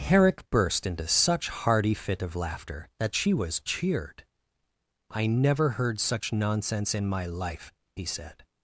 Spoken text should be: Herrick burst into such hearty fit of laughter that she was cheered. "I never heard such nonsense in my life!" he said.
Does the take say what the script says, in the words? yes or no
yes